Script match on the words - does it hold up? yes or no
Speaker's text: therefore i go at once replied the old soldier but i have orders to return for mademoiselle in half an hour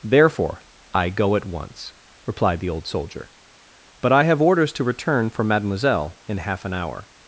yes